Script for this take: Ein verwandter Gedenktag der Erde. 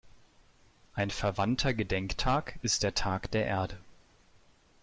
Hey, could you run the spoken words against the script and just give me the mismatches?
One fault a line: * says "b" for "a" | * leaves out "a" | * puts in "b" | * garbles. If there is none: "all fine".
* puts in "ist der Tag"